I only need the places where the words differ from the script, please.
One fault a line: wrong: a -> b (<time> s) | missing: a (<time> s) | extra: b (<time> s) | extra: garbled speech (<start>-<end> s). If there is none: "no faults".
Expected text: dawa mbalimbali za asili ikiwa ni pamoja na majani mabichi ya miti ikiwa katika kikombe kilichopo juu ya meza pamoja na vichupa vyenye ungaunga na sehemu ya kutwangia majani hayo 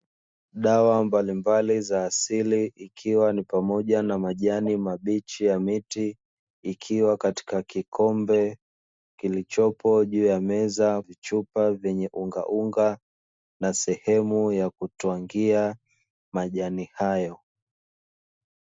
missing: pamoja na (11.0 s)